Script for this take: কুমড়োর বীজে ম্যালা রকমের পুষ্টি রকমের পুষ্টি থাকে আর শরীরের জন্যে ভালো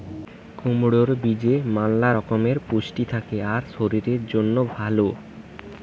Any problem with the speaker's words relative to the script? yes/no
yes